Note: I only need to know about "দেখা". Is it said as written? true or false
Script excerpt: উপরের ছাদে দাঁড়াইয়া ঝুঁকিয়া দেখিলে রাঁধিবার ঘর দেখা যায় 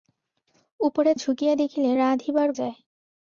false